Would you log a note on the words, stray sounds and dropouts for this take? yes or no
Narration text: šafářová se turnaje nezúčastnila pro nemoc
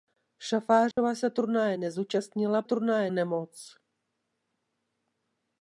yes